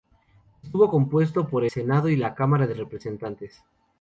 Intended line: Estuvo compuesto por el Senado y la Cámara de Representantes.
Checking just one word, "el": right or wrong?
wrong